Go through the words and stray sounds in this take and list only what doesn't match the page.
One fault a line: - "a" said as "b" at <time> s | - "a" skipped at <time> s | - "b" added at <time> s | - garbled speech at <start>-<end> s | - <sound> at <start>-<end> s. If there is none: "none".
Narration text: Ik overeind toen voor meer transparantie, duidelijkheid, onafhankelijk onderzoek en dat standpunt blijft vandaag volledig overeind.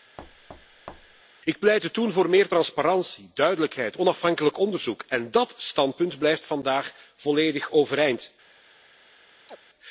- thud at 0.2-1.2 s
- "overeind" said as "pleitte" at 1.6 s
- chirp at 9.5-9.6 s